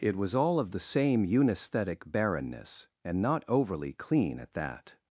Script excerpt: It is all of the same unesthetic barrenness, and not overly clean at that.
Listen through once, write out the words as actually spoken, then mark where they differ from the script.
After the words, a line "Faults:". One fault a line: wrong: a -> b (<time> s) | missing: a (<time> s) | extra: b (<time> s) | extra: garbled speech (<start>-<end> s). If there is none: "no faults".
It was all of the same unesthetic barrenness, and not overly clean at that.
Faults:
wrong: is -> was (0.1 s)